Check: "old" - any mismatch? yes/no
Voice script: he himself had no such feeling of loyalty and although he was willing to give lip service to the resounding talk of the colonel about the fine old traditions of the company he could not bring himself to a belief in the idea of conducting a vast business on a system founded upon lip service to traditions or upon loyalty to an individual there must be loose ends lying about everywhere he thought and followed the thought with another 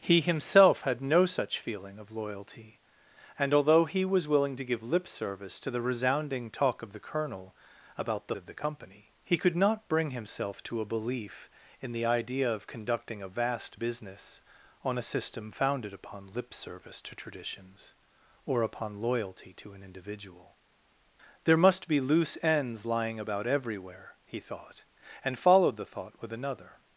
yes